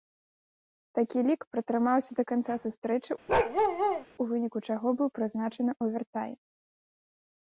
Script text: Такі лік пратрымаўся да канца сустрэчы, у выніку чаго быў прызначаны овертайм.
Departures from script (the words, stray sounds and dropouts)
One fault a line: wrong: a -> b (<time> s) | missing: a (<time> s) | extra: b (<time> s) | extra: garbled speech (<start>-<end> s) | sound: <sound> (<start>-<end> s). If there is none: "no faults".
sound: bark (3.3-4.1 s)